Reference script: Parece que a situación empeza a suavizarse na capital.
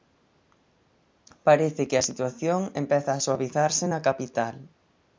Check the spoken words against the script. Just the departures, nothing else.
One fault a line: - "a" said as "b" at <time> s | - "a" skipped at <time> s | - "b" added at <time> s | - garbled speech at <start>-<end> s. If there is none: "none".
none